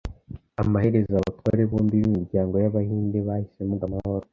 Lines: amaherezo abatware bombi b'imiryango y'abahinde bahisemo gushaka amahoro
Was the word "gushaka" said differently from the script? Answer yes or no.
yes